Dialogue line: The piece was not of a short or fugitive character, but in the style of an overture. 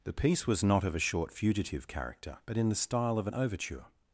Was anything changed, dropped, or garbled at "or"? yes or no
yes